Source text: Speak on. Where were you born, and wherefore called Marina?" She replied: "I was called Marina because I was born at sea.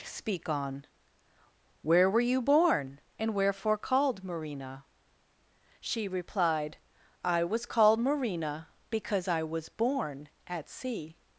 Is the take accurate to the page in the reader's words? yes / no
yes